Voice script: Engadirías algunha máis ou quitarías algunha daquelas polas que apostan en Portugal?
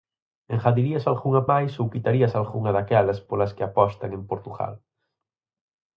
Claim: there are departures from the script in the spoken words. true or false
false